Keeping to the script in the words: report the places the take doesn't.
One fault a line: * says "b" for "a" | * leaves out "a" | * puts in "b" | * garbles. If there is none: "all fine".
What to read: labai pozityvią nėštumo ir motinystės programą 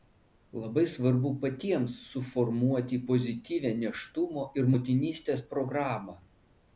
* puts in "svarbu patiems suformuoti"